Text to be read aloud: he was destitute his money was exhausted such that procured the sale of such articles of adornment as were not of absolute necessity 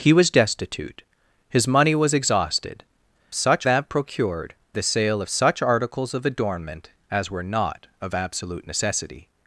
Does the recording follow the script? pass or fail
pass